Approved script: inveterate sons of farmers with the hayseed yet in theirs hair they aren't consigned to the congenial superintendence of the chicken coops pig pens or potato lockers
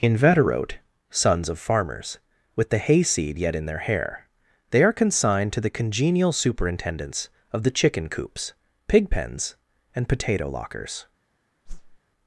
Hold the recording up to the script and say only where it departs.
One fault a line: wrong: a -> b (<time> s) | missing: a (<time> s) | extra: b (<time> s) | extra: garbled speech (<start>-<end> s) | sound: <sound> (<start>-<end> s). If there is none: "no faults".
wrong: theirs -> their (3.7 s)
wrong: aren't -> are (4.8 s)
wrong: or -> and (9.9 s)
sound: whoosh (11.6-12.0 s)